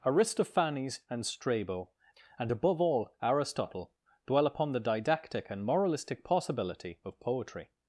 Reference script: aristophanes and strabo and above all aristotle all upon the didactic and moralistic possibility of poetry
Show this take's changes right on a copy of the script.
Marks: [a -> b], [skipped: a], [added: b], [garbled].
aristophanes and strabo and above all aristotle [all -> dwell] upon the didactic and moralistic possibility of poetry